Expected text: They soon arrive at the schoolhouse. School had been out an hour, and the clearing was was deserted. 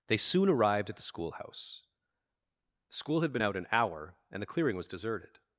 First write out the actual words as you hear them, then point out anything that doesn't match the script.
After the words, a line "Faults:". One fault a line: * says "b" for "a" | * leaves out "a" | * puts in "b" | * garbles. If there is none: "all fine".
They soon arrived at the schoolhouse. School had been out an hour, and the clearing was deserted.
Faults:
* says "arrived" for "arrive"
* leaves out "was"